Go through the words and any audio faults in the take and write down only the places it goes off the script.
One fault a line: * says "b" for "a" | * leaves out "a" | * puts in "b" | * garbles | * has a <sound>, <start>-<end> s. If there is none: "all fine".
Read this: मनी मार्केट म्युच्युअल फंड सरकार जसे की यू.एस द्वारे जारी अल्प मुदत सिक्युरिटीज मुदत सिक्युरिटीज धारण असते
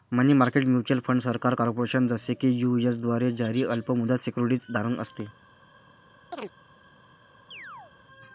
* puts in "कॉर्पोरेशन"
* leaves out "मुदत सिक्युरिटीज"
* has a chirp, 6.3-6.5 s
* has a chirp, 7.5-7.9 s